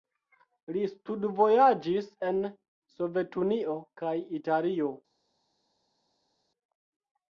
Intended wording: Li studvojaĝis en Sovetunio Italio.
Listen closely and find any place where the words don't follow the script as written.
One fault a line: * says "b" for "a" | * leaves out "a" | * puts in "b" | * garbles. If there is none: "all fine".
* puts in "kaj"